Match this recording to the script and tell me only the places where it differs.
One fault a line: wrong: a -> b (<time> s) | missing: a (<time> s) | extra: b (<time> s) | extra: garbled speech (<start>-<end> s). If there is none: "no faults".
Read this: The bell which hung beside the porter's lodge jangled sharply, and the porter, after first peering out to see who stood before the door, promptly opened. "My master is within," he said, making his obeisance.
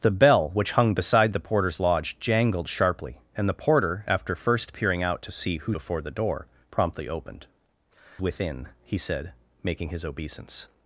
missing: stood (5.8 s)
missing: My master is (7.5 s)